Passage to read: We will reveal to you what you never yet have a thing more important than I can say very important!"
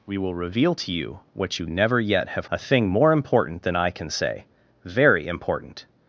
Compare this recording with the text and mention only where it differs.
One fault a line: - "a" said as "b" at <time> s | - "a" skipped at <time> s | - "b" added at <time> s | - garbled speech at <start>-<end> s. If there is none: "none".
none